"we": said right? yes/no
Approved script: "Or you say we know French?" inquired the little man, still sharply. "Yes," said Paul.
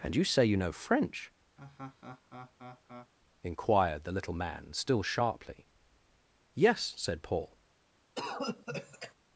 no